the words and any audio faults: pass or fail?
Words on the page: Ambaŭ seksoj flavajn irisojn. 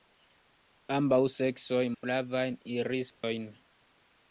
fail